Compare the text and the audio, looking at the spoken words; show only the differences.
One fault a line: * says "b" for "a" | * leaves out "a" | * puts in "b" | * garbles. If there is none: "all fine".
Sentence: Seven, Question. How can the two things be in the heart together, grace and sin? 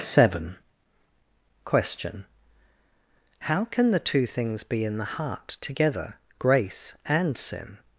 all fine